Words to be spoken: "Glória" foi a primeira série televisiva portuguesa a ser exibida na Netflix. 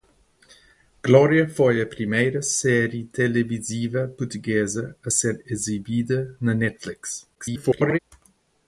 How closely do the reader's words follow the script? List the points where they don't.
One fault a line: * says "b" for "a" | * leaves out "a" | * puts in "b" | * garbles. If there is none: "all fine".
* garbles